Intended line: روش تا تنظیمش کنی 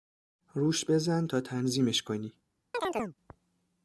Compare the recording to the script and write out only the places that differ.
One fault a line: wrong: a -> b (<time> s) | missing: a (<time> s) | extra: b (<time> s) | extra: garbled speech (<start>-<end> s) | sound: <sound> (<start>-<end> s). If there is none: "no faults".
extra: بزن (0.8 s)
sound: chirp (2.7-3.2 s)